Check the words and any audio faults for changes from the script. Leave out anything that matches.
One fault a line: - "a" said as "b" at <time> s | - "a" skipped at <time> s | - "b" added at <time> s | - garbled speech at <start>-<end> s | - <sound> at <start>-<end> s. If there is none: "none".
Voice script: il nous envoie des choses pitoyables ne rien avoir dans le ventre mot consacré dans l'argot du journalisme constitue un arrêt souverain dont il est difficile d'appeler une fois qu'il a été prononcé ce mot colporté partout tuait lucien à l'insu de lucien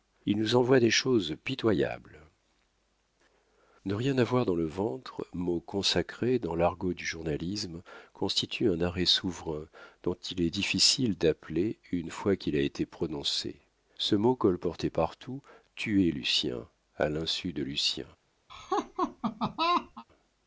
- laugh at 18.5-20.0 s